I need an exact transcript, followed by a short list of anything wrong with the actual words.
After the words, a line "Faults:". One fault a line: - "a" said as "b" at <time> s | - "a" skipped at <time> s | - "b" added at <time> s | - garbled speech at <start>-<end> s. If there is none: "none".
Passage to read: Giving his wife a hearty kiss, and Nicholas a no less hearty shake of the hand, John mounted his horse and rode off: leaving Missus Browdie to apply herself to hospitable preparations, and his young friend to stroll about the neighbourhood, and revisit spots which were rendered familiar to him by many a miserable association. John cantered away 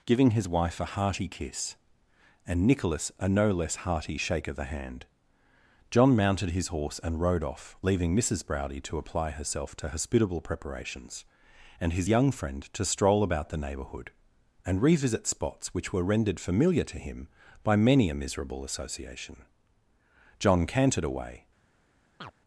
Giving his wife a hearty kiss, and Nicholas a no less hearty shake of the hand, John mounted his horse and rode off: leaving Missus Browdie to apply herself to hospitable preparations, and his young friend to stroll about the neighbourhood, and revisit spots which were rendered familiar to him by many a miserable association. John cantered away
Faults:
none